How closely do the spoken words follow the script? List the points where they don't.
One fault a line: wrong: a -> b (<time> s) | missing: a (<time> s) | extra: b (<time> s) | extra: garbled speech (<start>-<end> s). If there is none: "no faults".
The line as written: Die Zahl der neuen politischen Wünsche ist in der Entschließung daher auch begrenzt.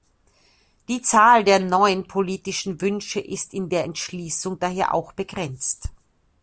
no faults